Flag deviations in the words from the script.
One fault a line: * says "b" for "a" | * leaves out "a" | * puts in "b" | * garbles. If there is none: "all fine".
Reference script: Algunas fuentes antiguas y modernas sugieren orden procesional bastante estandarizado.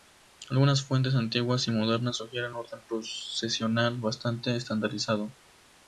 all fine